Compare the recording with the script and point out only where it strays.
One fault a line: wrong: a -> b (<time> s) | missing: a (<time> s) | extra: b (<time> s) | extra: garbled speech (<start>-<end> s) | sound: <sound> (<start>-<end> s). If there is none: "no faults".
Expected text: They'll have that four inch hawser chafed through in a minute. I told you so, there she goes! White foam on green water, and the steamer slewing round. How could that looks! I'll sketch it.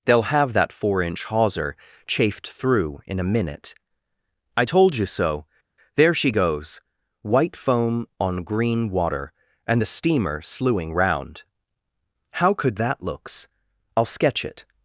no faults